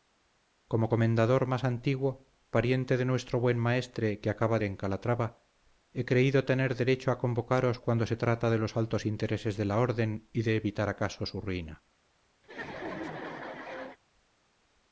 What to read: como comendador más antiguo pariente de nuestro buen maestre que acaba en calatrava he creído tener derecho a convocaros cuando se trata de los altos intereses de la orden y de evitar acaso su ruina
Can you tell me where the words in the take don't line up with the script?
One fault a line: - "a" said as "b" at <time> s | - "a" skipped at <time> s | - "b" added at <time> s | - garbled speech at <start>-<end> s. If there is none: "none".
none